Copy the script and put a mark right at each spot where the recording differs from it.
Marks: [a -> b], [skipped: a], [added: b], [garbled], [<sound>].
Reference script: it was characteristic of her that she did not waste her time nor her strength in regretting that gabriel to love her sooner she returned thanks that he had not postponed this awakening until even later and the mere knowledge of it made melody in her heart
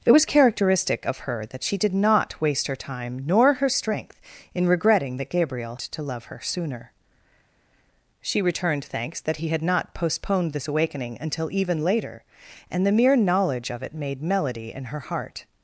it was characteristic of her that she did not waste her time nor her strength in regretting that gabriel to love her sooner she returned thanks that he had not postponed this awakening until even later and the mere knowledge of it made melody in her heart